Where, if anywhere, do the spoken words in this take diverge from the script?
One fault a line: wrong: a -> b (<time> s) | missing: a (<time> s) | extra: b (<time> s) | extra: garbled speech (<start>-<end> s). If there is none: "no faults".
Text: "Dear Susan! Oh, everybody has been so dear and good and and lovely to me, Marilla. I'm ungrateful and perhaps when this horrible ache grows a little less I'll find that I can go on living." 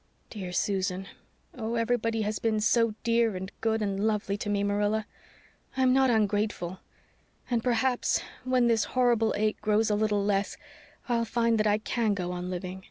missing: and (4.0 s)
extra: not (5.9 s)